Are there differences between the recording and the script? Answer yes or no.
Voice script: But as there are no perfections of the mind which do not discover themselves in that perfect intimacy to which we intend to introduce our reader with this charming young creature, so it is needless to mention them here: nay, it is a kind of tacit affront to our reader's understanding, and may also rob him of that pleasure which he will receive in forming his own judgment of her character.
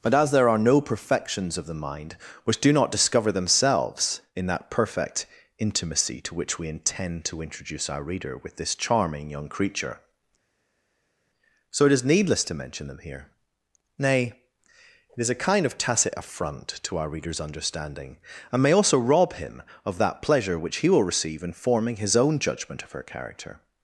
no